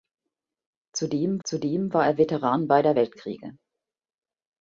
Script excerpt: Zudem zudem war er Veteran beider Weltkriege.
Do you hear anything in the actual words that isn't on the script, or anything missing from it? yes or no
no